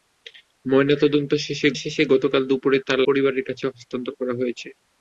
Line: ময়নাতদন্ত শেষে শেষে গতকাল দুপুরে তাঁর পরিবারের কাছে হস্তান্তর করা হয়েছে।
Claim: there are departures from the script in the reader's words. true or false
false